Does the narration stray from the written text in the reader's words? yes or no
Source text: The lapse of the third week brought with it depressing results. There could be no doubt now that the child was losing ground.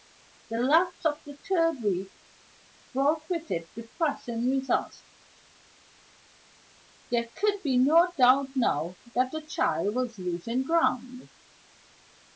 no